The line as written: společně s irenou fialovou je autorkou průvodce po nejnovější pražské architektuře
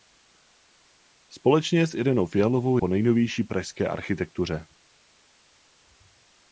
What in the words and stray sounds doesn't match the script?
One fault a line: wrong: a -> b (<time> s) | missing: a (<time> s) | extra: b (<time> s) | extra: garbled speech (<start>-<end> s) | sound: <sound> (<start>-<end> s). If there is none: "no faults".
missing: je autorkou průvodce (2.8 s)